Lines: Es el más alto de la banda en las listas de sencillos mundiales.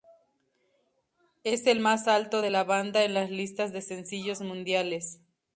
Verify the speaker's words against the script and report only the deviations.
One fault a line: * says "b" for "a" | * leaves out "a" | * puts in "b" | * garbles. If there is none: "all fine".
all fine